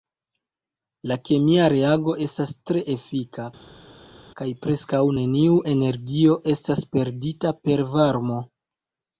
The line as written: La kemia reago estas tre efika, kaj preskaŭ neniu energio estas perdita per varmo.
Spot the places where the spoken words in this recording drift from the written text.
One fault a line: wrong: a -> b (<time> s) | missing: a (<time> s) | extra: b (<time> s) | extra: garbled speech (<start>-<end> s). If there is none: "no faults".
no faults